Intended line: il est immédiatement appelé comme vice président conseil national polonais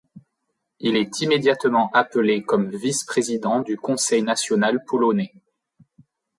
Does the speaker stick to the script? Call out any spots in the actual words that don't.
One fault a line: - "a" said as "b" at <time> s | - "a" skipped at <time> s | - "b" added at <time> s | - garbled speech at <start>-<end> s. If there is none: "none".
- "du" added at 3.6 s